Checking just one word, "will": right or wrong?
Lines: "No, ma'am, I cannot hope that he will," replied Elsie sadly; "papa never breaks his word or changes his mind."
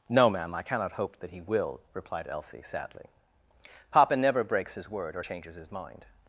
right